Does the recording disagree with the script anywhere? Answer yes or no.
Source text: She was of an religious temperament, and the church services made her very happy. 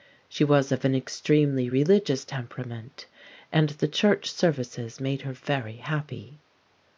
yes